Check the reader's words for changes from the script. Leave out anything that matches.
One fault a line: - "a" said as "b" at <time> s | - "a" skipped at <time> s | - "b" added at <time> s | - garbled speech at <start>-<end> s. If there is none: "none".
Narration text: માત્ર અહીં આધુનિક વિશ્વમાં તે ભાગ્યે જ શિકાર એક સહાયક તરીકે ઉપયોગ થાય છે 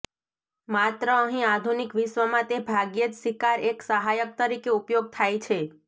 none